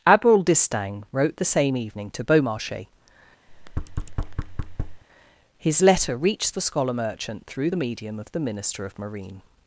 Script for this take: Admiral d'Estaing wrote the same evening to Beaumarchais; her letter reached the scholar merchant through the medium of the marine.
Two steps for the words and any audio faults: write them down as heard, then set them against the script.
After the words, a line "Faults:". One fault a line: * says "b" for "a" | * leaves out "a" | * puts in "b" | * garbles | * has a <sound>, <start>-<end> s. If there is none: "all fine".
Admiral d'Estaing wrote the same evening to Beaumarchais; his letter reached the scholar merchant through the medium of the minister of marine.
Faults:
* has a thud, 3.5-5.0 s
* says "his" for "her"
* puts in "minister of"